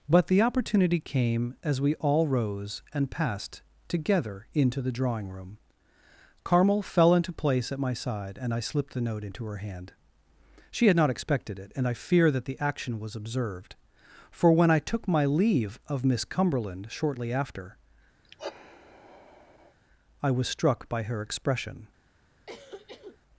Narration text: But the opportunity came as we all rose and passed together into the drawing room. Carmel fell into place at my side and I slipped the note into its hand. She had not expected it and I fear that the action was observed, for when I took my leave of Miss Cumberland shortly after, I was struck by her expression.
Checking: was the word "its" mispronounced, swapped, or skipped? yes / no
yes